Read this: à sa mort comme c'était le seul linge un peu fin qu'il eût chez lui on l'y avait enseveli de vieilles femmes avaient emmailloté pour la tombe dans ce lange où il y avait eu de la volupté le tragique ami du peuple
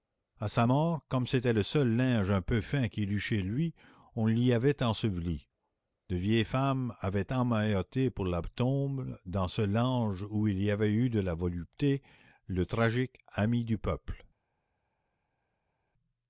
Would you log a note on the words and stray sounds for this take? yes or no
no